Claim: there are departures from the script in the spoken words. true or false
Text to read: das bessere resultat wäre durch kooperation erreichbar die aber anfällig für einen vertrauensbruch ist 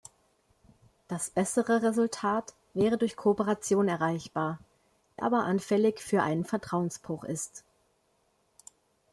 true